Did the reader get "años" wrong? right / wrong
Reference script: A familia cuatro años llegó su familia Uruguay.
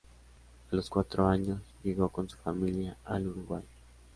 right